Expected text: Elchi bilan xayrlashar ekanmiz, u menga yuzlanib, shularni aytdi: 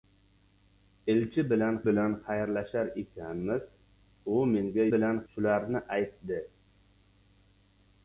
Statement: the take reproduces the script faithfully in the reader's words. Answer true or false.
false